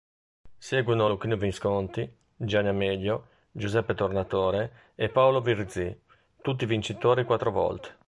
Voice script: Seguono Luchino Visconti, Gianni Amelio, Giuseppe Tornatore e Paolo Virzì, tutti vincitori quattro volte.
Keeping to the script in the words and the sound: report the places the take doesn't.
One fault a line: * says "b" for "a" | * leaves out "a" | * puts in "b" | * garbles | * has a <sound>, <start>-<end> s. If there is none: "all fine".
all fine